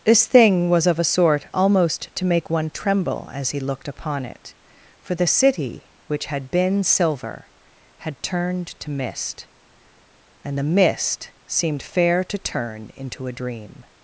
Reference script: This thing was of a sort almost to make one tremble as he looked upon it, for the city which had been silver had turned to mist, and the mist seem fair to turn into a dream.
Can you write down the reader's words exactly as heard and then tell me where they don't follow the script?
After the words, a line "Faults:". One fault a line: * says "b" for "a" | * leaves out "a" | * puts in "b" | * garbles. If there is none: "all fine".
This thing was of a sort almost to make one tremble as he looked upon it, for the city which had been silver had turned to mist, and the mist seemed fair to turn into a dream.
Faults:
* says "seemed" for "seem"